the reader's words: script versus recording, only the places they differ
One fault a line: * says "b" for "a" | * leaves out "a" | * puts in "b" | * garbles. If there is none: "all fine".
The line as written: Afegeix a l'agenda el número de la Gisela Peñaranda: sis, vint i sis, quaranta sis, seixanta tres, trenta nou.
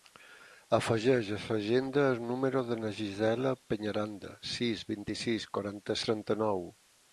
* leaves out "sis seixanta tres"